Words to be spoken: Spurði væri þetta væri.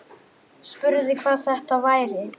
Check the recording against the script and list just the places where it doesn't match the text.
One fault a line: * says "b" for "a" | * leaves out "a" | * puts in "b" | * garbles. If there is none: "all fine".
* says "hvað" for "væri"